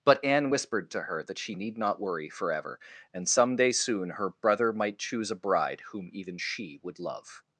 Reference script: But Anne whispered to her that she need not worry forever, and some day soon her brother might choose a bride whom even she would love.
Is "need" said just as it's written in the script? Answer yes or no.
yes